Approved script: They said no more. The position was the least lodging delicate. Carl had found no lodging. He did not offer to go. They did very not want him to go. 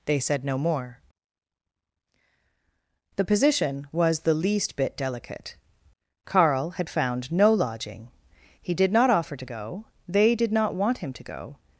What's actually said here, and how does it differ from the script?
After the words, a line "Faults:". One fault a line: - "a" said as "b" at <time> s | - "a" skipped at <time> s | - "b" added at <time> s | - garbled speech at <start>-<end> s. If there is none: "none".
They said no more. The position was the least bit delicate. Carl had found no lodging. He did not offer to go. They did not want him to go.
Faults:
- "lodging" said as "bit" at 4.8 s
- "very" skipped at 10.5 s